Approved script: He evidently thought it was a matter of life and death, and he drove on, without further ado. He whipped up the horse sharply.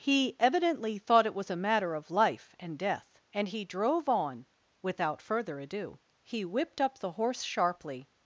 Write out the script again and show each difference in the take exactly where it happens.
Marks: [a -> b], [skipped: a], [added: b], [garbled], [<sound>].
He evidently thought it was a matter of life and death, and he drove on, without further ado. He whipped up the horse sharply.